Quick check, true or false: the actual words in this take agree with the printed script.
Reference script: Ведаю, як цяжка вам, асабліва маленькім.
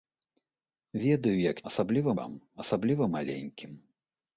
false